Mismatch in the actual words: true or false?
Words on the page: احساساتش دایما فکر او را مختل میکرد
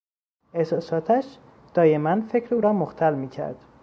false